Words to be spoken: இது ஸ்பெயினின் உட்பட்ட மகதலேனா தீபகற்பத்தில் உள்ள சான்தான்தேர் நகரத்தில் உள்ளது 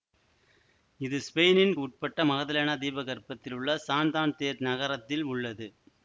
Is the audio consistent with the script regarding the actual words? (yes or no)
yes